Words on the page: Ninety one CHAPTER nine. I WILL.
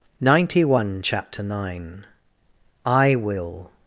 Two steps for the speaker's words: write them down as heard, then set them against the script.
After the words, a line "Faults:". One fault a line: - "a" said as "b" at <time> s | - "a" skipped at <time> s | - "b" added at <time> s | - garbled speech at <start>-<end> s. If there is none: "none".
Ninety one CHAPTER nine. I WILL.
Faults:
none